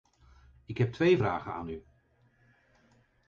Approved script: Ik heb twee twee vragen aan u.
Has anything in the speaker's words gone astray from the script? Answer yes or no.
yes